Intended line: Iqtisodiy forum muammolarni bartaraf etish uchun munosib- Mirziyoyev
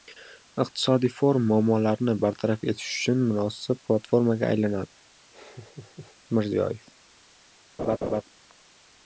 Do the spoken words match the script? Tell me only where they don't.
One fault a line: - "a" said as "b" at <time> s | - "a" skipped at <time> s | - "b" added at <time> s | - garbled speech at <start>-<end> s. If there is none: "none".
- "platformaga aylanadi" added at 3.9 s